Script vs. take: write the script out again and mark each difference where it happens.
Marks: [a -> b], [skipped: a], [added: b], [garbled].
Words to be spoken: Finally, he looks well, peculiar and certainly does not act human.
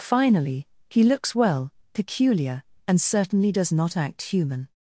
Finally, he looks well, peculiar and certainly does not act human.